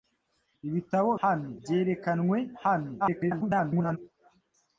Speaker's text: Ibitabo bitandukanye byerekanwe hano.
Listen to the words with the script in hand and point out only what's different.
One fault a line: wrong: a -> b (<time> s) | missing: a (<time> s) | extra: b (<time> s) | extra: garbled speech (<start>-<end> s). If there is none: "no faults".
wrong: bitandukanye -> hano (1.2 s)
extra: garbled speech (3.0-4.0 s)